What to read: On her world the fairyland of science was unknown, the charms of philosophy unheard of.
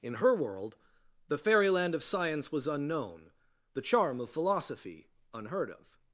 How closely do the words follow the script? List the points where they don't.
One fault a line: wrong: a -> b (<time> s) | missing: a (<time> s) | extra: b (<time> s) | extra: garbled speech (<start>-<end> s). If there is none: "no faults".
wrong: On -> In (0.0 s)
wrong: charms -> charm (3.8 s)